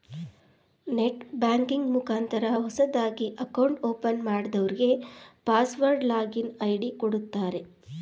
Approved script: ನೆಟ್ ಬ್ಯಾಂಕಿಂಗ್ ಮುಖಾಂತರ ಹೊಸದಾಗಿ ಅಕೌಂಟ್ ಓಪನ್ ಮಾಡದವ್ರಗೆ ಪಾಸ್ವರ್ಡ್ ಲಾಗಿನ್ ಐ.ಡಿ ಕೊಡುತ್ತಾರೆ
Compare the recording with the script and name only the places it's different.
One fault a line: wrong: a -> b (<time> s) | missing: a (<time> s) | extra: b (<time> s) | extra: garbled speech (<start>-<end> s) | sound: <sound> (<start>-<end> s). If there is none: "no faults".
no faults